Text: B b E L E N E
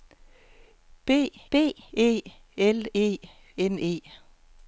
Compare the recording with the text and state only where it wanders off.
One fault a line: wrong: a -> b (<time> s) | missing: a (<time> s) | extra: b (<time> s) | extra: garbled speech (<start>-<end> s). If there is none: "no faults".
no faults